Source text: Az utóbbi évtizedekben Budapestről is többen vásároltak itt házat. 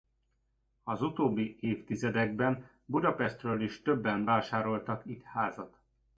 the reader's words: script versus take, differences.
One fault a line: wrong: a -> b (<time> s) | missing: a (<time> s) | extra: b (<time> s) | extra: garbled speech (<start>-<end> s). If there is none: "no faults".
no faults